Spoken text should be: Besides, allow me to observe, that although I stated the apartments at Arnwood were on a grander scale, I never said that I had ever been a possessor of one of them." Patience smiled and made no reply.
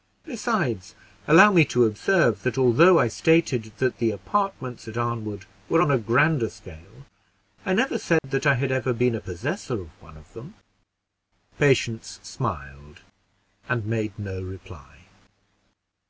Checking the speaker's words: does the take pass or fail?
fail